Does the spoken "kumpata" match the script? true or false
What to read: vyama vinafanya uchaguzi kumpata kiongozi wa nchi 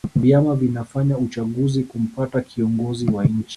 true